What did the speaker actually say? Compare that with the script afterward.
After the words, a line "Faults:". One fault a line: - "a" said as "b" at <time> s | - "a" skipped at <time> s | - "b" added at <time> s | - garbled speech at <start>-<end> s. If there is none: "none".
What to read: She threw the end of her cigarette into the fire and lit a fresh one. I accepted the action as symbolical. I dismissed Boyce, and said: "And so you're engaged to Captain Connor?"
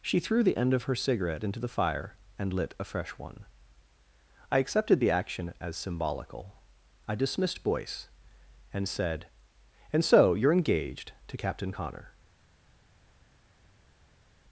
She threw the end of her cigarette into the fire and lit a fresh one. I accepted the action as symbolical. I dismissed Boyce, and said: "And so you're engaged to Captain Connor?"
Faults:
none